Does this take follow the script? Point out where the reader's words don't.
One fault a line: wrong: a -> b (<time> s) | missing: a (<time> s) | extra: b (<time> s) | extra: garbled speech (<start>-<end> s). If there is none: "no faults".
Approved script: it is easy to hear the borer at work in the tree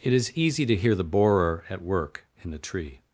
no faults